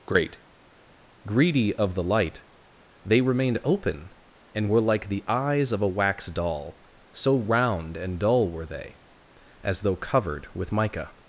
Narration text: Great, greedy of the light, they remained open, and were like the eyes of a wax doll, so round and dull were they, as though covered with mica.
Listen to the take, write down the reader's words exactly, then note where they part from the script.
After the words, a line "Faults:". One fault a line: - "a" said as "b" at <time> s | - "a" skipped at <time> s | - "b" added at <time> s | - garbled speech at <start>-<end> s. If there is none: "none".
Great, greedy of the light, they remained open, and were like the eyes of a wax doll, so round and dull were they, as though covered with mica.
Faults:
none